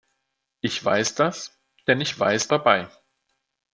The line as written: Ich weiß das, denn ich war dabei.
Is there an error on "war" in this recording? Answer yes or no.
yes